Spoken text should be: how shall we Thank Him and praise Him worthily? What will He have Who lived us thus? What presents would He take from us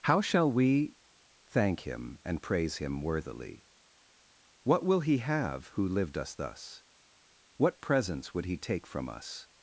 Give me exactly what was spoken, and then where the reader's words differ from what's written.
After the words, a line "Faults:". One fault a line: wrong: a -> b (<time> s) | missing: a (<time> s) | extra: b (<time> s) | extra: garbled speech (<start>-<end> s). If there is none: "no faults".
how shall we Thank Him and praise Him worthily? What will He have Who lived us thus? What presents would He take from us
Faults:
no faults